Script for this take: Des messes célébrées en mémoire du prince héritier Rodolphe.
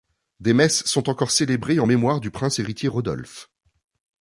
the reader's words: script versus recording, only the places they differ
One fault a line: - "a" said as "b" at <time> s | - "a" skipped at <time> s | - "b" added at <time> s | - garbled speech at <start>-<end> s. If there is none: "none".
- "sont encore" added at 0.8 s